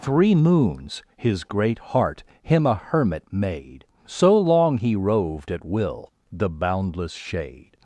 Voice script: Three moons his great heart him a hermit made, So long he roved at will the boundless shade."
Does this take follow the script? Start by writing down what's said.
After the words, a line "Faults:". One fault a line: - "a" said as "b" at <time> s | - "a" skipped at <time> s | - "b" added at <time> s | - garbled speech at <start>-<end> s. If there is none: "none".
Three moons his great heart him a hermit made, So long he roved at will the boundless shade."
Faults:
none